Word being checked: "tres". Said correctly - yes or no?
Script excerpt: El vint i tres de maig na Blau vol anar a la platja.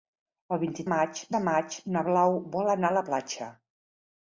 no